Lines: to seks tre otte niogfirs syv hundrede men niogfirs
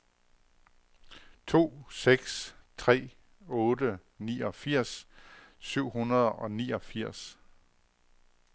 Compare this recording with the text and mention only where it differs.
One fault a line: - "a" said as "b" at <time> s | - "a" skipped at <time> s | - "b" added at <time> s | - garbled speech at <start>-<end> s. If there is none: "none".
- "men" said as "og" at 6.3 s